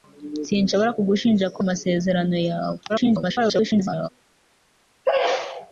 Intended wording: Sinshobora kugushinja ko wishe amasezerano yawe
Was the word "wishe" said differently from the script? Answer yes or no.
yes